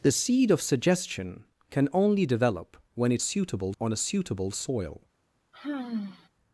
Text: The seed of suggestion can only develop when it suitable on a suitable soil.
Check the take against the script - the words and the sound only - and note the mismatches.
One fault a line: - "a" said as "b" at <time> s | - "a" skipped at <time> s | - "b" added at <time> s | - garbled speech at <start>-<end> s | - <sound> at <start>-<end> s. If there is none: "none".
- sigh at 5.5-6.3 s